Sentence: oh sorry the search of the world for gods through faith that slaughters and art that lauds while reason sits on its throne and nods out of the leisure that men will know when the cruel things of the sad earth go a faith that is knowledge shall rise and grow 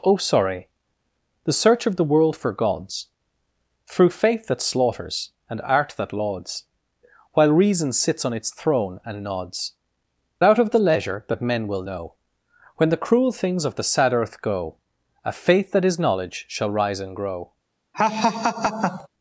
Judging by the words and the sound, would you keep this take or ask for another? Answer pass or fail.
fail